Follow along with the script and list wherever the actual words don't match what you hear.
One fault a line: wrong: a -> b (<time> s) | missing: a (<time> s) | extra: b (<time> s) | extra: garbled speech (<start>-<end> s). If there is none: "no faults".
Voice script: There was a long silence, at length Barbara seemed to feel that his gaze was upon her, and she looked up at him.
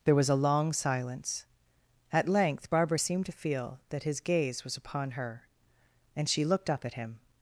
no faults